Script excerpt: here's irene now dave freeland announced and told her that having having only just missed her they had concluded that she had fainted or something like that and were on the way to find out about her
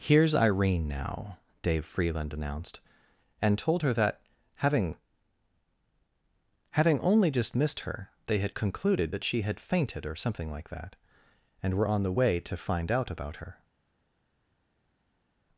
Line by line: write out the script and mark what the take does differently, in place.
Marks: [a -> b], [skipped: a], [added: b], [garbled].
here's irene now dave freeland announced and told her that having having only just missed her they had concluded that she had fainted or something like that and were on the way to find out about her